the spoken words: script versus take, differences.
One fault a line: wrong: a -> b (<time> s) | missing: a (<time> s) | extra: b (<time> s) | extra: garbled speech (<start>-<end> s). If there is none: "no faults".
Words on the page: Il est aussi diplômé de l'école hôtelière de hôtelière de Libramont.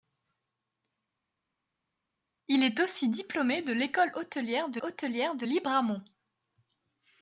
no faults